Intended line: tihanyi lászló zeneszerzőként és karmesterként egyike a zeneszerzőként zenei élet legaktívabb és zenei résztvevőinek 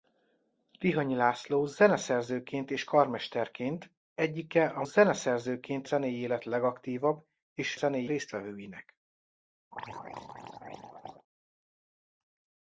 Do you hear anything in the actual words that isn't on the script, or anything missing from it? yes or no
no